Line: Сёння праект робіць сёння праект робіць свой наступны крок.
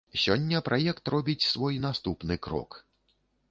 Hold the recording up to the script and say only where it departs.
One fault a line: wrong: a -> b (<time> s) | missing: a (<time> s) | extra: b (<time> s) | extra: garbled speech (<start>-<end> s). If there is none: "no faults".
missing: сёння праект робіць (1.5 s)